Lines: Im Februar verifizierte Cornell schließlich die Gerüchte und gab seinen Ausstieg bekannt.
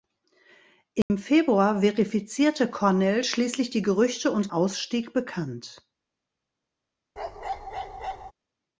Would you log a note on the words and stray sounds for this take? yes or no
yes